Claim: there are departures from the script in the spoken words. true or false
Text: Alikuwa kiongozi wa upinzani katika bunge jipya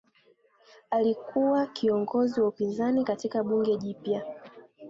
false